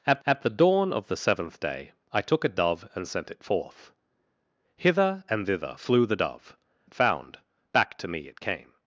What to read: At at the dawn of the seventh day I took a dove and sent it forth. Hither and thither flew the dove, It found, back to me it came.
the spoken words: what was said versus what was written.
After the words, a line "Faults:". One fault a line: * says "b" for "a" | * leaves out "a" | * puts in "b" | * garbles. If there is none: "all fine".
At at the dawn of the seventh day I took a dove and sent it forth. Hither and thither flew the dove, It found, back to me it came.
Faults:
all fine